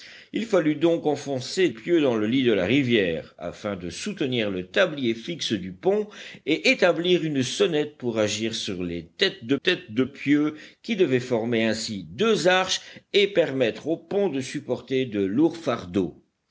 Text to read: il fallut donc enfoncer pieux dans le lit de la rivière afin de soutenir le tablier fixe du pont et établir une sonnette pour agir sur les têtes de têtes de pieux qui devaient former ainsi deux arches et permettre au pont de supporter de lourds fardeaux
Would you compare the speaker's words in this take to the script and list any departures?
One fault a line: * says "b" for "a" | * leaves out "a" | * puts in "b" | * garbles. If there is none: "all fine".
all fine